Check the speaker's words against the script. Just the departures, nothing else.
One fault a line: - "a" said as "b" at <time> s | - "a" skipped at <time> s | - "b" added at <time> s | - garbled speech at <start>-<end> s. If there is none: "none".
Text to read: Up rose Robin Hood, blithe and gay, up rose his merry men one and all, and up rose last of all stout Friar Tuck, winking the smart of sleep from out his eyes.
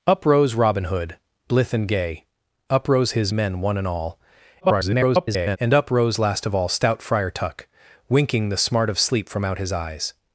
- "merry" skipped at 3.3 s
- garbled speech at 4.6-5.6 s